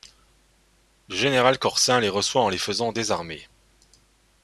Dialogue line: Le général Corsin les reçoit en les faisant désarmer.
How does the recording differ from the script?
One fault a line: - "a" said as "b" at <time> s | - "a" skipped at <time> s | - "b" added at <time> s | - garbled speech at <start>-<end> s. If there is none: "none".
none